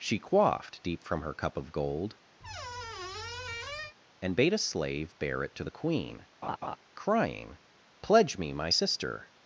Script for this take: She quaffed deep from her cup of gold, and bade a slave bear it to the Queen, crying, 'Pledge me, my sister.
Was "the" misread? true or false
false